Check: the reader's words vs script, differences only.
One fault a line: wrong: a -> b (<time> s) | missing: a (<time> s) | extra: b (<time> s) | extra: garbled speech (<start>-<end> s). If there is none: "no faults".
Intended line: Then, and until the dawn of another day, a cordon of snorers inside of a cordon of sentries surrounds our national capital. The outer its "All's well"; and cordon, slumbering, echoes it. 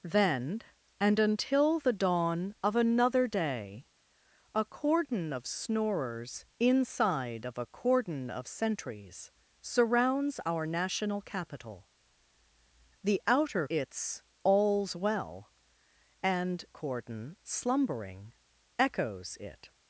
no faults